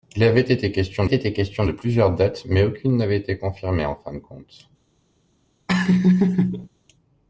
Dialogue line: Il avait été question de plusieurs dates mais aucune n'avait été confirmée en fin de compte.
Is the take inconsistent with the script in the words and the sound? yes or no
yes